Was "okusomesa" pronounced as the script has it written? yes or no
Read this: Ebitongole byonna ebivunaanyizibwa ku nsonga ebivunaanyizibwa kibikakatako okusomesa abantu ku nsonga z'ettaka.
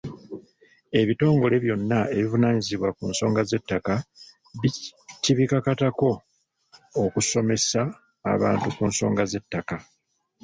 yes